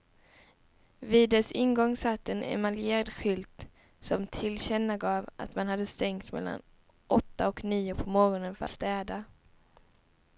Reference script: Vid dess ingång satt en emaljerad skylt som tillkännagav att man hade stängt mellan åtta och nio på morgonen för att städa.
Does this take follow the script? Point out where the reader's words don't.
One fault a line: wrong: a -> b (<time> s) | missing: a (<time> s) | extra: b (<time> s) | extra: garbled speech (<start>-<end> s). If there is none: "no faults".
missing: att (8.7 s)